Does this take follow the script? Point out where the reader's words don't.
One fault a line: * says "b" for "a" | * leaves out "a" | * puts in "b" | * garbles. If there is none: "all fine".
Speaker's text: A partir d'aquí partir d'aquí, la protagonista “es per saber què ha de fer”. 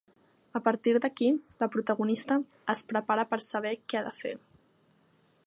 * leaves out "partir d'aquí"
* puts in "prepara"